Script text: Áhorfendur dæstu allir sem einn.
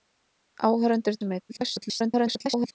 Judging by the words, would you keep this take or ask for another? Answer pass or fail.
fail